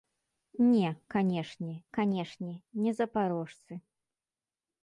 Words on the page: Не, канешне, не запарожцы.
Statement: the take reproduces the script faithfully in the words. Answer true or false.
false